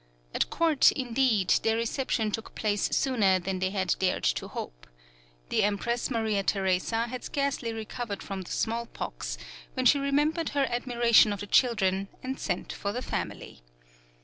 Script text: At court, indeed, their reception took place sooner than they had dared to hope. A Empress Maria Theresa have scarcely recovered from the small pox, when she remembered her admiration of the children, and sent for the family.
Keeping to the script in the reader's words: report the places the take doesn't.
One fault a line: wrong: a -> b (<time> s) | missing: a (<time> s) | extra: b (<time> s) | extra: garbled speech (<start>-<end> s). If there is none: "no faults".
wrong: A -> The (5.5 s)
wrong: have -> had (7.1 s)